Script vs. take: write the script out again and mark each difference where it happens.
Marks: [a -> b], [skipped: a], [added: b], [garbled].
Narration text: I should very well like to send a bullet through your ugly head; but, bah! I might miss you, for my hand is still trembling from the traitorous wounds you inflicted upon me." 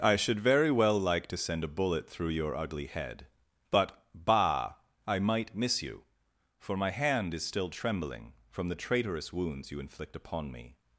I should very well like to send a bullet through your ugly head; but, bah! I might miss you, for my hand is still trembling from the traitorous wounds you [inflicted -> inflict] upon me."